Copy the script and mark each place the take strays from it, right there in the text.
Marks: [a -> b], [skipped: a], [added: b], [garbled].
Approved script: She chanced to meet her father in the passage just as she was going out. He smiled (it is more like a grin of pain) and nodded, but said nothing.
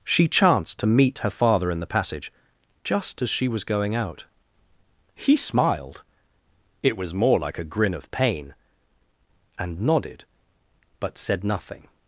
She chanced to meet her father in the passage just as she was going out. He smiled (it [is -> was] more like a grin of pain) and nodded, but said nothing.